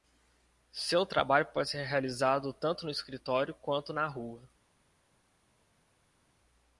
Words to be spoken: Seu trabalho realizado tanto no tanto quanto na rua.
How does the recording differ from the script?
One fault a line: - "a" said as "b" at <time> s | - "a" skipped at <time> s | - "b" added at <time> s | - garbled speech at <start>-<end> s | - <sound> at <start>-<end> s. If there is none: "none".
- "pode ser" added at 1.5 s
- "tanto" said as "escritório" at 2.9 s